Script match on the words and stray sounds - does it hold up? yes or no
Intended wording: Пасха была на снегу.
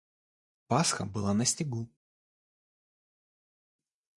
yes